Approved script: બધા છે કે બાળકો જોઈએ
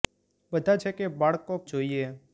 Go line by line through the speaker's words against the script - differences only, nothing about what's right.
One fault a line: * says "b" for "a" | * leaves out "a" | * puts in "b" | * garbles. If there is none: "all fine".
all fine